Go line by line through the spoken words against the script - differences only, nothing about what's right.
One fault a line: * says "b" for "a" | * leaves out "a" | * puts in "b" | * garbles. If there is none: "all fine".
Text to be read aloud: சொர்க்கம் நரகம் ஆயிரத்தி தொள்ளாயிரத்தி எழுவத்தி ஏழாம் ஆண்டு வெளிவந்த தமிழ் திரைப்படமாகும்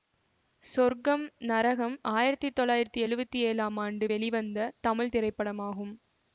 all fine